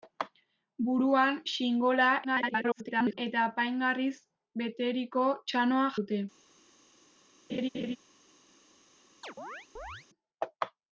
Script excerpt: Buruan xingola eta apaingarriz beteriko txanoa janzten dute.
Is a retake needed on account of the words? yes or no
yes